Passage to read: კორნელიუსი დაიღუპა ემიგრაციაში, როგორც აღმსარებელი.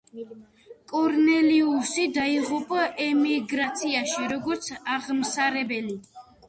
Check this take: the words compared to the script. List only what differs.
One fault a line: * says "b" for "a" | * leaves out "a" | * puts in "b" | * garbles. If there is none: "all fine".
all fine